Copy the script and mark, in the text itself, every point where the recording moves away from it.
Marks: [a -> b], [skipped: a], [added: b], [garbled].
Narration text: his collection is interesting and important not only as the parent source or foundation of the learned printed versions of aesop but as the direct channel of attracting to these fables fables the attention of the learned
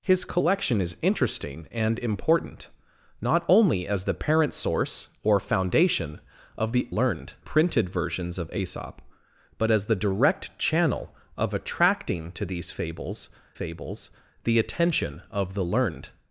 his collection is interesting and important not only as the parent source or foundation of the learned printed versions of aesop but as the direct channel of attracting to these fables fables the attention of the learned